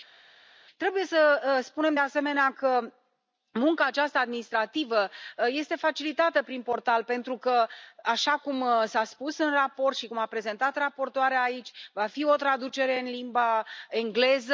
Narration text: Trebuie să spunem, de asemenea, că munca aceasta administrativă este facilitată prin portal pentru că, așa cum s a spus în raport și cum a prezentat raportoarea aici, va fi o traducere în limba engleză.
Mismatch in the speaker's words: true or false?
false